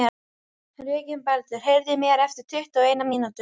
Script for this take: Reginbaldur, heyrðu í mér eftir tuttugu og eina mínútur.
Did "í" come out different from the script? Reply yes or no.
no